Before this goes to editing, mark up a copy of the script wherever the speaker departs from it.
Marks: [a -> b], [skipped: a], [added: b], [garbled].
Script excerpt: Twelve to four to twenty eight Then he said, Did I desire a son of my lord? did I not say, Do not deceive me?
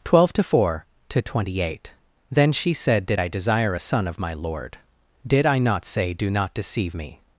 Twelve to four to twenty eight Then [he -> she] said, Did I desire a son of my lord? did I not say, Do not deceive me?